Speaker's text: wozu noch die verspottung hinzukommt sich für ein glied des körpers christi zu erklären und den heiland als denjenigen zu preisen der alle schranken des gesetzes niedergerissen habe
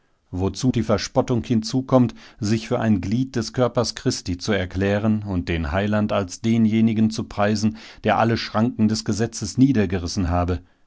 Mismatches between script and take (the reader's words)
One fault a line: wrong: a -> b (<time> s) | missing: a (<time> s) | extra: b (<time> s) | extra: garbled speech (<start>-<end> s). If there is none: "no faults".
missing: noch (0.7 s)